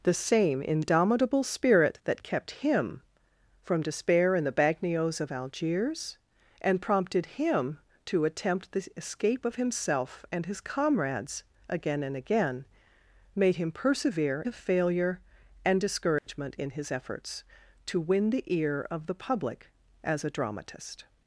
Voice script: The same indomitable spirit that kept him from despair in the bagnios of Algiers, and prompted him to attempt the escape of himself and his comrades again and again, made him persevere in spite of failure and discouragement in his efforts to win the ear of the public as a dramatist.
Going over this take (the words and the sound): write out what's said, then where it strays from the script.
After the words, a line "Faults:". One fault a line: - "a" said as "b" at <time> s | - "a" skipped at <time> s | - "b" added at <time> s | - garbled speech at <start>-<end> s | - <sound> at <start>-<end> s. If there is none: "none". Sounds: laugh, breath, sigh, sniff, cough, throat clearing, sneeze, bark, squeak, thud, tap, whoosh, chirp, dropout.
The same indomitable spirit that kept him from despair in the bagnios of Algiers, and prompted him to attempt the escape of himself and his comrades again and again, made him persevere of failure and discouragement in his efforts to win the ear of the public as a dramatist.
Faults:
- "in spite" skipped at 14.5 s
- dropout at 16.2-16.3 s